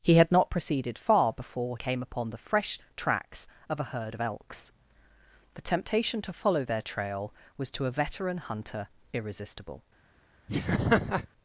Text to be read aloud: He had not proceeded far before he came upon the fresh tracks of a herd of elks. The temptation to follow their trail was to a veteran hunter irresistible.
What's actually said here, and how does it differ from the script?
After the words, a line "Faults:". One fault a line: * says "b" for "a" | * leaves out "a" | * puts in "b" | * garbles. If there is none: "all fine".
He had not proceeded far before came upon the fresh tracks of a herd of elks. The temptation to follow their trail was to a veteran hunter irresistible.
Faults:
* leaves out "he"